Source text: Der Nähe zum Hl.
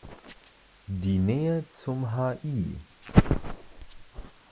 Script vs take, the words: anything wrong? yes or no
yes